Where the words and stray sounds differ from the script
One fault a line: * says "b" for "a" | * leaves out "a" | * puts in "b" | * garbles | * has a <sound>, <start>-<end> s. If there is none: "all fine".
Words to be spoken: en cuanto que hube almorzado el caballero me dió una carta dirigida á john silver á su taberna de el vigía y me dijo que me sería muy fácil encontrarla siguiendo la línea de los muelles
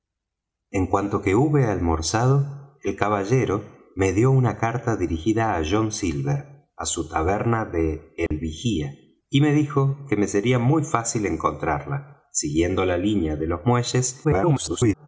* has a dropout, 8.3-8.3 s
* garbles